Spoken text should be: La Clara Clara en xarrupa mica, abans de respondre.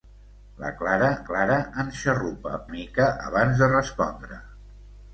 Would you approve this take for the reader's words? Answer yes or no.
yes